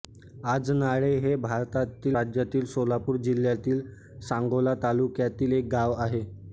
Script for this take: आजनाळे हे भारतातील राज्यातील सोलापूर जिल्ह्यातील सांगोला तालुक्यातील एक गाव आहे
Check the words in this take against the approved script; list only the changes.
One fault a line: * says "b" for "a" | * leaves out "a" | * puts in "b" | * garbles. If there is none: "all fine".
all fine